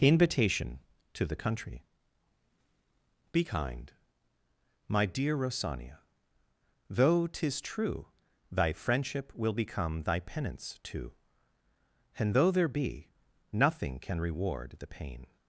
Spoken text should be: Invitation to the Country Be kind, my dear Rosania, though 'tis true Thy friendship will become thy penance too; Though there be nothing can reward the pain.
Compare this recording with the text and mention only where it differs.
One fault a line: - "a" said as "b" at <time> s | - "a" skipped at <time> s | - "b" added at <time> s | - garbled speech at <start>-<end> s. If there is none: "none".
- "and" added at 12.2 s